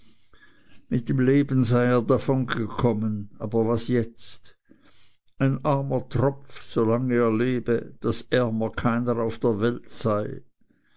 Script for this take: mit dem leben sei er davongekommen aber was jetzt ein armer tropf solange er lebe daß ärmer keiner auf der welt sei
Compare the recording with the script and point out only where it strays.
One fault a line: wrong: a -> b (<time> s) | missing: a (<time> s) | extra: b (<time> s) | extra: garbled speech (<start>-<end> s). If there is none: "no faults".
no faults